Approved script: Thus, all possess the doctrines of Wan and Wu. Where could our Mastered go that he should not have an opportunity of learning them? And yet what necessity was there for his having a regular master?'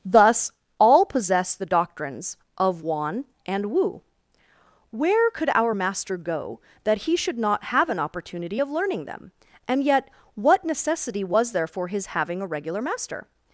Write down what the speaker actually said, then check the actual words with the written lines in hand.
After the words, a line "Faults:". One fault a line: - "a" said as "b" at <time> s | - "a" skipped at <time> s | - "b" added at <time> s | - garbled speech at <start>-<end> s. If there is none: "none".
Thus, all possess the doctrines of Wan and Wu. Where could our Master go that he should not have an opportunity of learning them? And yet what necessity was there for his having a regular master?'
Faults:
- "Mastered" said as "Master" at 5.7 s